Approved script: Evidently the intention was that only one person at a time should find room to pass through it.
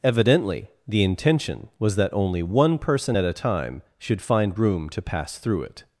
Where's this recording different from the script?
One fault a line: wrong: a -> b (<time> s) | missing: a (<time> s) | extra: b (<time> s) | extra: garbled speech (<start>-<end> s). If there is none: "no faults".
no faults